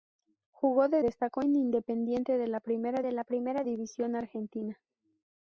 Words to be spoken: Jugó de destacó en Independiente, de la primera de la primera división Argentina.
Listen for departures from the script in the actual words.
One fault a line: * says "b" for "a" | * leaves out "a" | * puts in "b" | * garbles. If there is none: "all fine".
all fine